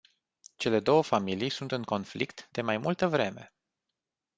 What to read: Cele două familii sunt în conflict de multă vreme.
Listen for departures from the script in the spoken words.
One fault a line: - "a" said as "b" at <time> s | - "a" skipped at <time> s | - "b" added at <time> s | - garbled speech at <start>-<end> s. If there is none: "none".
- "mai" added at 2.6 s